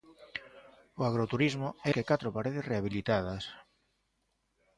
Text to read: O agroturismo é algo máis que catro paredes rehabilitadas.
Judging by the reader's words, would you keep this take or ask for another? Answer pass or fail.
fail